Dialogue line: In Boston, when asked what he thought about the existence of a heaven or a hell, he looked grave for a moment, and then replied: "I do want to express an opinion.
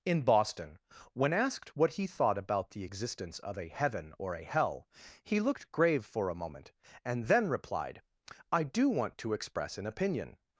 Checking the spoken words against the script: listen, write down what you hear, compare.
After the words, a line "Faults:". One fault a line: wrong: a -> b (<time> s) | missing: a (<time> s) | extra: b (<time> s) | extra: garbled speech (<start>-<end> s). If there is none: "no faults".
In Boston, when asked what he thought about the existence of a heaven or a hell, he looked grave for a moment, and then replied: "I do want to express an opinion.
Faults:
no faults